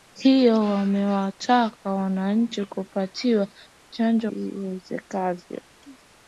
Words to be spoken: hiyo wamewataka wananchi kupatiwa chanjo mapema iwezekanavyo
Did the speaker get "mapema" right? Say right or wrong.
wrong